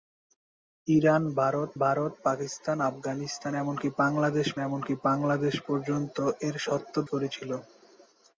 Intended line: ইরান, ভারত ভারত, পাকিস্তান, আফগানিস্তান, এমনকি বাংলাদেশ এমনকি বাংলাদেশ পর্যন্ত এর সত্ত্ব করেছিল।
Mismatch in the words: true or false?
false